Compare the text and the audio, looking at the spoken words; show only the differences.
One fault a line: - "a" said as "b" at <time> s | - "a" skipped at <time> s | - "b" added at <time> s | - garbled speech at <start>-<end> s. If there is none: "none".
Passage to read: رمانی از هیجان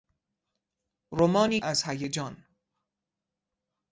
none